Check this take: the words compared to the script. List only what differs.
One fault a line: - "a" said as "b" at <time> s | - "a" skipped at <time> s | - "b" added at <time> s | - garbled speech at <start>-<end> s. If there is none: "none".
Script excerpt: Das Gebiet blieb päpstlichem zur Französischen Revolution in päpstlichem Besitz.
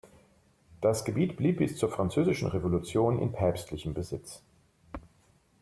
- "päpstlichem" said as "bis" at 1.6 s